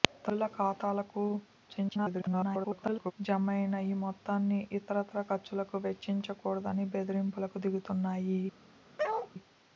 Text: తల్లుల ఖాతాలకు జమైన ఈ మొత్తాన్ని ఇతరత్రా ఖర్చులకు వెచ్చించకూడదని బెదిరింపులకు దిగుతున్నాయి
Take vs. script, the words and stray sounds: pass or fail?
fail